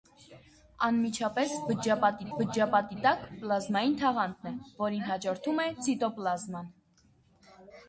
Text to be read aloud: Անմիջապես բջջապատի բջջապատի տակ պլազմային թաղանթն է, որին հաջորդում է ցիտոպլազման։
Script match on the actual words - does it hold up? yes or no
yes